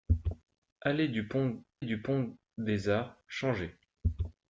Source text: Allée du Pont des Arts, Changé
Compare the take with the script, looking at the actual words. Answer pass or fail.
fail